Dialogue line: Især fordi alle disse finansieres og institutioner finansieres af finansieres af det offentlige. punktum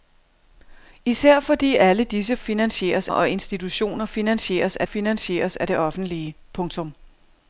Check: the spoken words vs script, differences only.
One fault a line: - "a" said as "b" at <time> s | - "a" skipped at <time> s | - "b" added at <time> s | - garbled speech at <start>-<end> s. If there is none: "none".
none